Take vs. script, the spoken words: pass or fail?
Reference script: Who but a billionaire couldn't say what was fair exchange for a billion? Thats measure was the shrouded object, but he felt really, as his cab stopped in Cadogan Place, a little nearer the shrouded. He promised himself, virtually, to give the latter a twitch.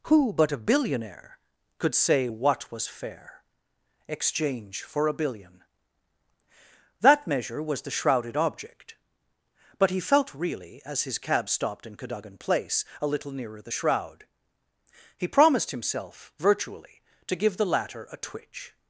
fail